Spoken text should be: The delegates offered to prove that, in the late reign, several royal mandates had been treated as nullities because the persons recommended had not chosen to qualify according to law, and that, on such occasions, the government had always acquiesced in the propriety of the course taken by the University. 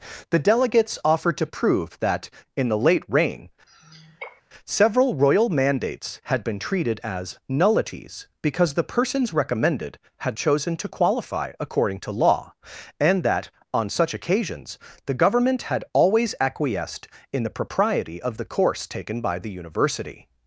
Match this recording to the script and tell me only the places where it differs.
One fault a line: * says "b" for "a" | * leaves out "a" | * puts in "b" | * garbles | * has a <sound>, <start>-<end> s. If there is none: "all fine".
* has a sigh, 3.7-4.4 s
* leaves out "not"